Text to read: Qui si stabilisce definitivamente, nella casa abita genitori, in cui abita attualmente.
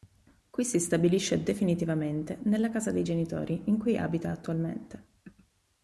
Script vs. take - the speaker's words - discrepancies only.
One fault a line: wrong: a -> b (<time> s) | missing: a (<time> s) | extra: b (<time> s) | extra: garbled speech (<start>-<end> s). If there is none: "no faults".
wrong: abita -> dei (2.9 s)